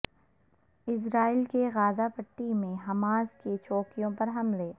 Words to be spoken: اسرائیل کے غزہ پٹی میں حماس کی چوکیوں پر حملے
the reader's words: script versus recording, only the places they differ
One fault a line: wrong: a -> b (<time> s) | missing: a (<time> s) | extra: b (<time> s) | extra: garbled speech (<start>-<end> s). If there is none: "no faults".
no faults